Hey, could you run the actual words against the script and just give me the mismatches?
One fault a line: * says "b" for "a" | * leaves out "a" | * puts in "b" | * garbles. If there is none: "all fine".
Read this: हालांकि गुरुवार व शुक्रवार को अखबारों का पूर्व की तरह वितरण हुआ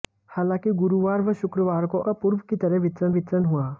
* leaves out "अखबारों"
* puts in "वितरण"